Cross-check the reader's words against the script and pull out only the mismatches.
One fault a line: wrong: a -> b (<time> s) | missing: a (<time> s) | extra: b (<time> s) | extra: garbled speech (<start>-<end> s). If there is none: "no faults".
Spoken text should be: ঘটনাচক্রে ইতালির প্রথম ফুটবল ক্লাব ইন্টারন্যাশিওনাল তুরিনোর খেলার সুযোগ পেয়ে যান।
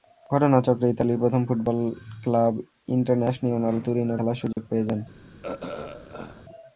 no faults